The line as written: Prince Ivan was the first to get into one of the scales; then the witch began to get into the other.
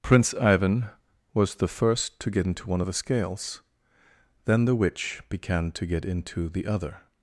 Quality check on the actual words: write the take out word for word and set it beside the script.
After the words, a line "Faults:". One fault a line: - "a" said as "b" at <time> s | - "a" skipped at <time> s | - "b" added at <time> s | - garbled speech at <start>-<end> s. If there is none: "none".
Prince Ivan was the first to get into one of the scales; then the witch began to get into the other.
Faults:
none